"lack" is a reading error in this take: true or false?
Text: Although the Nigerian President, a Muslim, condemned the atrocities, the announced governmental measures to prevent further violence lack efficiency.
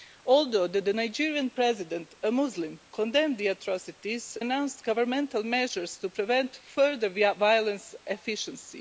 true